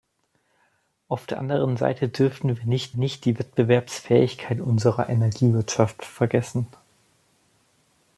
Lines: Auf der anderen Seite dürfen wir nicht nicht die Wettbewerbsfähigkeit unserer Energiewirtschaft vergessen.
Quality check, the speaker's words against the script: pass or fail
pass